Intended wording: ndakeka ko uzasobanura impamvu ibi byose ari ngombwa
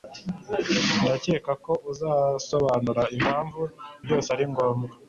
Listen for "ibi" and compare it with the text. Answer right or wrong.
wrong